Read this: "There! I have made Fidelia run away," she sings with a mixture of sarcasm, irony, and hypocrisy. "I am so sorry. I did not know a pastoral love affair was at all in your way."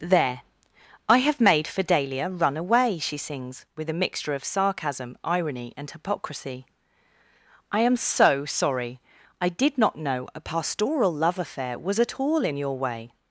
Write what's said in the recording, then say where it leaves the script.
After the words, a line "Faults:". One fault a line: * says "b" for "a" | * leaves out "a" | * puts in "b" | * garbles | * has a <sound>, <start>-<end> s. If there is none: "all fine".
"There! I have made Fidelia run away," she sings with a mixture of sarcasm, irony, and hypocrisy. "I am so sorry. I did not know a pastoral love affair was at all in your way."
Faults:
all fine